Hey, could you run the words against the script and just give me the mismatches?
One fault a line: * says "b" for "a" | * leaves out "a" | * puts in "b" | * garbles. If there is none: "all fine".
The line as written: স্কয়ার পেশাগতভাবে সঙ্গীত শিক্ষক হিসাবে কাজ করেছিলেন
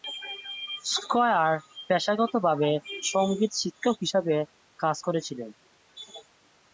all fine